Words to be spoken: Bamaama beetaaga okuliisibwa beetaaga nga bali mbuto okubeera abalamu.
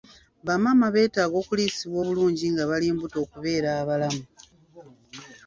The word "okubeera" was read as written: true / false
true